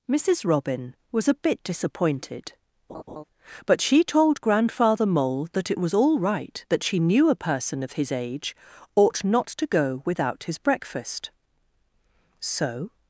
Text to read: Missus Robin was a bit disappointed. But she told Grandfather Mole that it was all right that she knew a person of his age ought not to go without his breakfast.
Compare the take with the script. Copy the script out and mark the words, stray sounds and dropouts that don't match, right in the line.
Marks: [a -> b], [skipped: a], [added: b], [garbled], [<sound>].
Missus Robin was a bit disappointed. [laugh] But she told Grandfather Mole that it was all right that she knew a person of his age ought not to go without his breakfast. [added: So]